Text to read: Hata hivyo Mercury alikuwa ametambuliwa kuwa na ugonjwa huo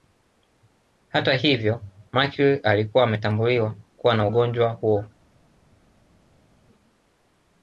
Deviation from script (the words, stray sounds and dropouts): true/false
false